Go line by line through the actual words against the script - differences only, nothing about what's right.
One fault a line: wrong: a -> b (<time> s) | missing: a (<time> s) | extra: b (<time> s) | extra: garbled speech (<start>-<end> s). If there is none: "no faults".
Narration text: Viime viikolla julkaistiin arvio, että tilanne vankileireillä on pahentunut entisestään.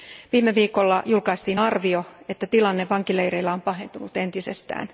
no faults